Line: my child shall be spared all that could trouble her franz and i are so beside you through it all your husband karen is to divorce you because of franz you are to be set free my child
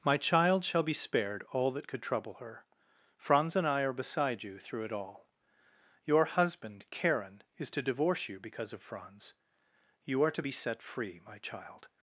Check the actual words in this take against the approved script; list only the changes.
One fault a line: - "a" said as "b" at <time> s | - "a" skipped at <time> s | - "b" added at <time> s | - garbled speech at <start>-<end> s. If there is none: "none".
- "so" skipped at 3.9 s